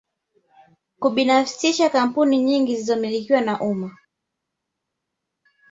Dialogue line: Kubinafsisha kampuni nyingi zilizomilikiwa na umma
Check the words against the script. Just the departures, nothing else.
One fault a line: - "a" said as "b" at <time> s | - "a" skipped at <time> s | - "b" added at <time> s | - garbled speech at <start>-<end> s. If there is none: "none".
none